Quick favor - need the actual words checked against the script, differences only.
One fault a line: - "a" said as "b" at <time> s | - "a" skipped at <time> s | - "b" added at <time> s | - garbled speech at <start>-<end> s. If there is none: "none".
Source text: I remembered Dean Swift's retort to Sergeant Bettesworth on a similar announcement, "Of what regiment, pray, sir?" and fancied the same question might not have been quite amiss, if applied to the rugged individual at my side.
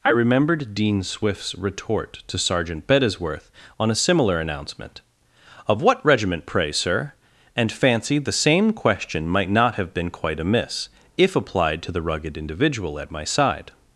none